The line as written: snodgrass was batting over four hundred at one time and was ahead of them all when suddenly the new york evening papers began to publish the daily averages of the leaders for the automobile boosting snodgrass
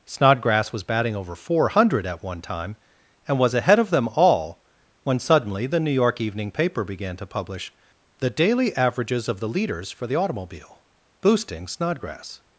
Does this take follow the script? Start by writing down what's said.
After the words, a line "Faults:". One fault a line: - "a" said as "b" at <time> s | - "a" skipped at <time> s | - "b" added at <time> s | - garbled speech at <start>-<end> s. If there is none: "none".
snodgrass was batting over four hundred at one time and was ahead of them all when suddenly the new york evening paper began to publish the daily averages of the leaders for the automobile boosting snodgrass
Faults:
- "papers" said as "paper" at 6.5 s